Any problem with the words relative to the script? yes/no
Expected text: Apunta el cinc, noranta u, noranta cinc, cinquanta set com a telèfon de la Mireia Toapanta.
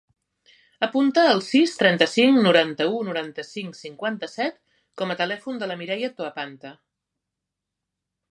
yes